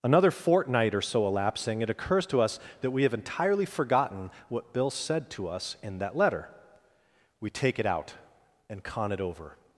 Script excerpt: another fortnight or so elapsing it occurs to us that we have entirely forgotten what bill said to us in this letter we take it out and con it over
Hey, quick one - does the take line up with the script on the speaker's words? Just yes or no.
no